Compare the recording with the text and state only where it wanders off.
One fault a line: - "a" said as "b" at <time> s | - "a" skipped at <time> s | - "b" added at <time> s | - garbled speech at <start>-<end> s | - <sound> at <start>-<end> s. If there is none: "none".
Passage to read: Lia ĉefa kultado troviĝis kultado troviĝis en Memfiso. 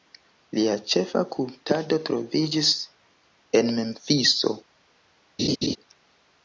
- "kultado troviĝis" skipped at 2.7 s
- laugh at 5.4-5.8 s